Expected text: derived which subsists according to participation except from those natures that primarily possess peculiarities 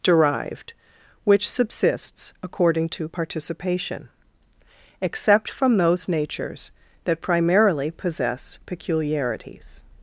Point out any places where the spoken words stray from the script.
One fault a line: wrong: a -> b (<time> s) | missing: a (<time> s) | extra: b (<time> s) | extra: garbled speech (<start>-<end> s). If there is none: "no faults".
no faults